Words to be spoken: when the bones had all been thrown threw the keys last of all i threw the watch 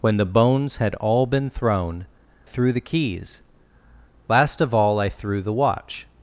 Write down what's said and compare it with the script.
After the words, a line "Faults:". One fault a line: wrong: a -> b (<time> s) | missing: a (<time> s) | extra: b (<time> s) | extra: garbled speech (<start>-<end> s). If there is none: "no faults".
when the bones had all been thrown threw the keys last of all i threw the watch
Faults:
no faults